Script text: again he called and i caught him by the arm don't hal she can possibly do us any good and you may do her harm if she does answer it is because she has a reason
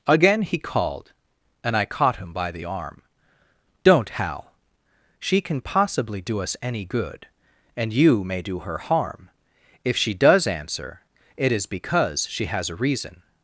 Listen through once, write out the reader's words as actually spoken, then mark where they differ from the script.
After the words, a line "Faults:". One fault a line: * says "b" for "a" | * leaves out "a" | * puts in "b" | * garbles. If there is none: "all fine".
again he called and i caught him by the arm don't hal she can possibly do us any good and you may do her harm if she does answer it is because she has a reason
Faults:
all fine